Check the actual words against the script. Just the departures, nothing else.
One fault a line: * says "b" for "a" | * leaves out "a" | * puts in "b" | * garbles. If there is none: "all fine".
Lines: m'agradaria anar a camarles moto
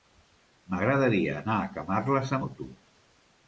all fine